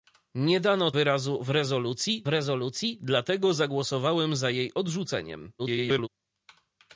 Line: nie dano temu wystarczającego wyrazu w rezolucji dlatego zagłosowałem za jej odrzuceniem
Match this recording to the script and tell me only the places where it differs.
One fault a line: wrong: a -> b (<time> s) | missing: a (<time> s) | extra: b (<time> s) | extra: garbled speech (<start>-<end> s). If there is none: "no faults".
missing: temu wystarczającego (0.9 s)
extra: rezolucji (2.3 s)
extra: garbled speech (5.6-6.1 s)